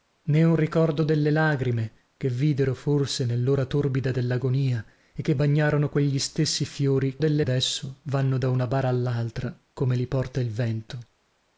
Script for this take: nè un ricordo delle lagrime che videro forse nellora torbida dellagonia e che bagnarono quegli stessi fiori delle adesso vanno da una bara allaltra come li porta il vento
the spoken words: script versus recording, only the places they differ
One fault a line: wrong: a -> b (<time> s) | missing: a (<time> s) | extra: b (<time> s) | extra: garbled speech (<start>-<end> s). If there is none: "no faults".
no faults